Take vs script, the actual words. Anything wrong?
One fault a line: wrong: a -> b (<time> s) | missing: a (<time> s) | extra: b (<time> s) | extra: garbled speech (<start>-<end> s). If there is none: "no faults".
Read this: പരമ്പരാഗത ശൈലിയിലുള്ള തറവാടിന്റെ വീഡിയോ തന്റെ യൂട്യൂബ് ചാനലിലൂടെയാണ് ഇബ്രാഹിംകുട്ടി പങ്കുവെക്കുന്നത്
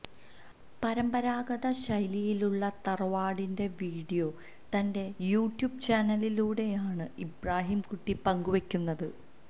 no faults